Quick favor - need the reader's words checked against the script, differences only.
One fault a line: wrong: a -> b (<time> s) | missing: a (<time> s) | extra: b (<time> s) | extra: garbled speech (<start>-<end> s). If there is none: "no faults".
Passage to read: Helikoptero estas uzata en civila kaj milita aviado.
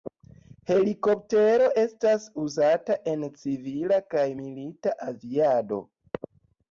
no faults